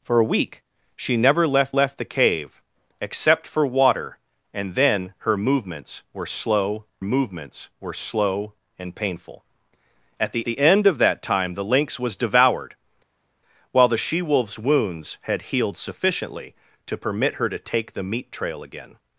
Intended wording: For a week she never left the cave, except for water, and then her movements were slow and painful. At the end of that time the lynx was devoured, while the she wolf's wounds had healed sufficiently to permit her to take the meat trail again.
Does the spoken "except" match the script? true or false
true